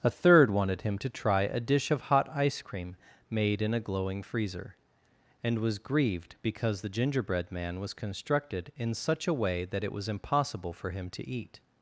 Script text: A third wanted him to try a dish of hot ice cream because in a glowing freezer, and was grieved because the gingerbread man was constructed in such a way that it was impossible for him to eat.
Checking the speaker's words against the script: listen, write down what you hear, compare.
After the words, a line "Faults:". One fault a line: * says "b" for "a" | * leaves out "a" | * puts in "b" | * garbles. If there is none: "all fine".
A third wanted him to try a dish of hot ice cream made in a glowing freezer, and was grieved because the gingerbread man was constructed in such a way that it was impossible for him to eat.
Faults:
* says "made" for "because"